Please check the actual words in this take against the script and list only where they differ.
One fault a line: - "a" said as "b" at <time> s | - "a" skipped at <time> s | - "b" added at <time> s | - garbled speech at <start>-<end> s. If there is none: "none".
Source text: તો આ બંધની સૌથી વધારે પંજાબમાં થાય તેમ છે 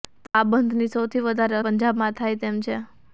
none